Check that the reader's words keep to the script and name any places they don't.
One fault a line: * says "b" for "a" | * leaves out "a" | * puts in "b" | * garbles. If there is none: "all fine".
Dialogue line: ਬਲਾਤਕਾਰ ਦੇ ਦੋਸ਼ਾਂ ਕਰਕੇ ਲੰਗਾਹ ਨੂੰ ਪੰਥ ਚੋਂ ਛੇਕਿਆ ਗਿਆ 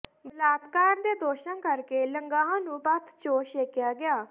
all fine